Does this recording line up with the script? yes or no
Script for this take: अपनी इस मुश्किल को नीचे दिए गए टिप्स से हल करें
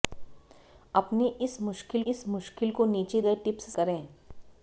no